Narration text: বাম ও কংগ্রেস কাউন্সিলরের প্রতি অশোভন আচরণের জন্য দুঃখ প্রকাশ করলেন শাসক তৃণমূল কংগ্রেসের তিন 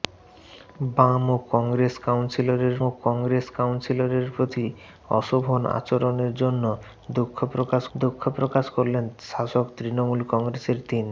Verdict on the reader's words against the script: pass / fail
fail